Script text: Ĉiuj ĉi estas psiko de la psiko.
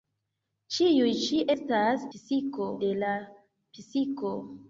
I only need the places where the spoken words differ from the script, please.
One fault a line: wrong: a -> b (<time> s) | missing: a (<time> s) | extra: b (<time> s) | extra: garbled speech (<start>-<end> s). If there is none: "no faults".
no faults